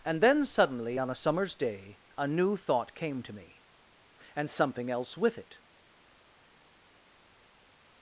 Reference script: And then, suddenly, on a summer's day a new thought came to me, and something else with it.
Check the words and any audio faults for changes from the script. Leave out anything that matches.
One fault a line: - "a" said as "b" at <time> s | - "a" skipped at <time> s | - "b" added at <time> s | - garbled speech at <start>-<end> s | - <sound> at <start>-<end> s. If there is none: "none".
none